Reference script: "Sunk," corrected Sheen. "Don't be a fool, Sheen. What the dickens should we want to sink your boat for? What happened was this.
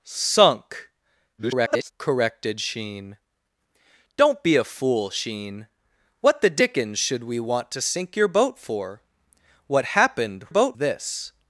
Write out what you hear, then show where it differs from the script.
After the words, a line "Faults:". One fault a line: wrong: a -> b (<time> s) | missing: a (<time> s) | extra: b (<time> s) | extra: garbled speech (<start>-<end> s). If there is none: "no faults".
"Sunk," [garbled] corrected Sheen. "Don't be a fool, Sheen. What the dickens should we want to sink your boat for? What happened boat this.
Faults:
extra: garbled speech (1.4-1.9 s)
wrong: was -> boat (10.5 s)